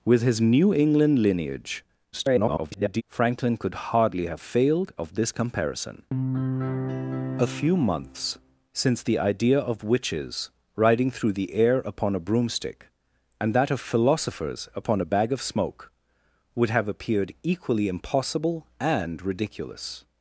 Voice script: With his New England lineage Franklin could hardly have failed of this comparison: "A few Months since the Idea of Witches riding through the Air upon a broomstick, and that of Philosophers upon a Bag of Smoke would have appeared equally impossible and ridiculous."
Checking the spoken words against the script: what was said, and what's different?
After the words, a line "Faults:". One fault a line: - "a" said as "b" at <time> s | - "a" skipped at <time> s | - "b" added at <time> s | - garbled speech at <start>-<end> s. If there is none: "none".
With his New England lineage [garbled] Franklin could hardly have failed of this comparison: "A few Months since the Idea of Witches riding through the Air upon a broomstick, and that of Philosophers upon a Bag of Smoke would have appeared equally impossible and ridiculous."
Faults:
- garbled speech at 2.1-3.0 s